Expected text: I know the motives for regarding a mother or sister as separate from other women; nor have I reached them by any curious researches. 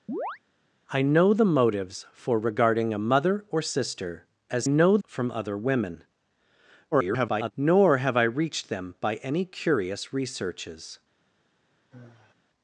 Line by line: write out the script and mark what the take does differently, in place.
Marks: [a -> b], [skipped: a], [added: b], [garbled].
I know the motives for regarding a mother or sister as [separate -> know] from other women; [garbled] nor have I reached them by any curious researches.